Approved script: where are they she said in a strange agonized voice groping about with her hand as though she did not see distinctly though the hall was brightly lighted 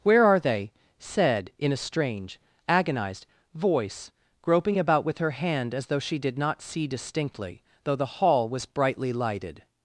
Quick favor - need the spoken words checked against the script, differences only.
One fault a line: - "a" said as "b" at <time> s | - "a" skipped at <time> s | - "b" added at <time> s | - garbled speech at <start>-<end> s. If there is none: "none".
- "she" skipped at 0.7 s